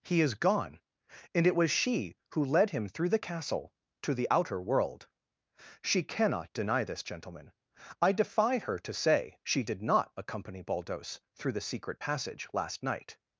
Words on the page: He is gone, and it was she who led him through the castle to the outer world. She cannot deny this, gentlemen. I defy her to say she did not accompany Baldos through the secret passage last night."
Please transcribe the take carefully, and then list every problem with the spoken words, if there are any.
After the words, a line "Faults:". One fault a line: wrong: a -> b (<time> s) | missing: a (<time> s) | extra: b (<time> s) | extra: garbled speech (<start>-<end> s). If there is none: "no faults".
He is gone, and it was she who led him through the castle to the outer world. She cannot deny this, gentlemen. I defy her to say she did not accompany Baldos through the secret passage last night."
Faults:
no faults